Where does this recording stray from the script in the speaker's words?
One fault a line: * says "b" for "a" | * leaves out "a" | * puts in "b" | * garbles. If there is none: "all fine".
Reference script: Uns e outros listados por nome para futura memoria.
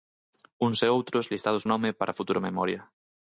* leaves out "por"